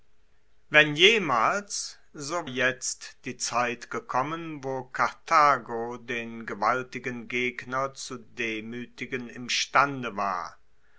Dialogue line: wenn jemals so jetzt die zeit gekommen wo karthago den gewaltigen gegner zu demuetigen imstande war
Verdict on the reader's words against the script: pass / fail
pass